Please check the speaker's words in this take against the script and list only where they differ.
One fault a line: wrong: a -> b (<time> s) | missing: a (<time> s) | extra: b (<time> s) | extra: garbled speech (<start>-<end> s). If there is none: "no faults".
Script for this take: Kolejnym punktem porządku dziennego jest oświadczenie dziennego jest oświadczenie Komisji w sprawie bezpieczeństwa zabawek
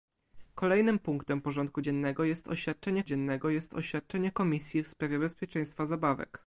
no faults